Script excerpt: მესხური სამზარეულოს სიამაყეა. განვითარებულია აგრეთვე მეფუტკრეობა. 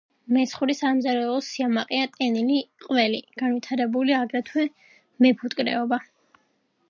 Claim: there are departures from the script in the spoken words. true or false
true